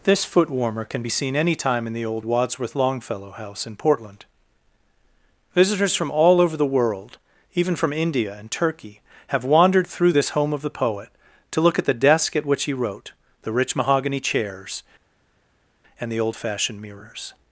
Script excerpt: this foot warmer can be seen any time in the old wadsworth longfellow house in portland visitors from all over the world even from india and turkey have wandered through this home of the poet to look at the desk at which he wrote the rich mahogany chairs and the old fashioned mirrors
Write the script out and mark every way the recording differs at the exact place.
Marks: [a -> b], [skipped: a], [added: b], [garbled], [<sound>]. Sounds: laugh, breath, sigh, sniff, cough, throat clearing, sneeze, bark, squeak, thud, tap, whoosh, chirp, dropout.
this foot warmer can be seen any time in the old wadsworth longfellow house in portland visitors from all over the world even from india and turkey have wandered through this home of the poet to look at the desk at which he wrote the rich mahogany chairs and the old fashioned mirrors